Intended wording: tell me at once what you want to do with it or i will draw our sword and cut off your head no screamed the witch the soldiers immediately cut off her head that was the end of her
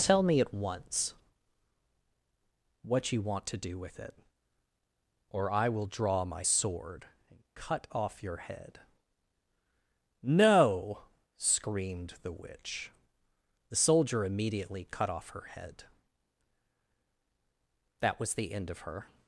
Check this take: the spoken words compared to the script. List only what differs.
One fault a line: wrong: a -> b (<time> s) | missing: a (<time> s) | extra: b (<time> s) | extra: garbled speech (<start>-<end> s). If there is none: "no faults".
wrong: our -> my (6.2 s)
wrong: soldiers -> soldier (13.7 s)